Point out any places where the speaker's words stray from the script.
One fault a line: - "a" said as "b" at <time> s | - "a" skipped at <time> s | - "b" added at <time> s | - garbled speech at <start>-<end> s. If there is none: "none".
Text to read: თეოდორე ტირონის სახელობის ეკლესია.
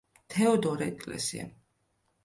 - "ტირონის სახელობის" skipped at 0.9 s